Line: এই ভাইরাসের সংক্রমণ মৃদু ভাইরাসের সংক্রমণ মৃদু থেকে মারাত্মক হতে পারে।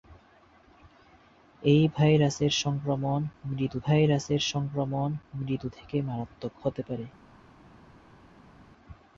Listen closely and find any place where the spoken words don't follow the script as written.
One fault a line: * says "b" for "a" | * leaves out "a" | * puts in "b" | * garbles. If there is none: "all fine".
all fine